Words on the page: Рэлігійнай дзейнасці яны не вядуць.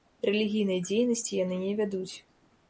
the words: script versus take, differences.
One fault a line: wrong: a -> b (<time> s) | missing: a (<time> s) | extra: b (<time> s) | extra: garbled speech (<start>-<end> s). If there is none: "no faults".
no faults